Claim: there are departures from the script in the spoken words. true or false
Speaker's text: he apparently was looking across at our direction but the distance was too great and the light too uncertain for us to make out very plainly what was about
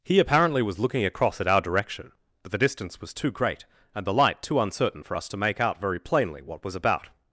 false